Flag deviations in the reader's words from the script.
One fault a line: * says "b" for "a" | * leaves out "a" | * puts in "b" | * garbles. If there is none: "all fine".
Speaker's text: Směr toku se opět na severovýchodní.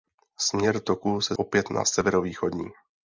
all fine